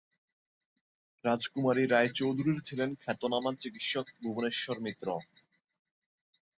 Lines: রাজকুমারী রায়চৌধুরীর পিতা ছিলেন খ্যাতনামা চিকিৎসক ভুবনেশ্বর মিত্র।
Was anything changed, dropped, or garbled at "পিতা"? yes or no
yes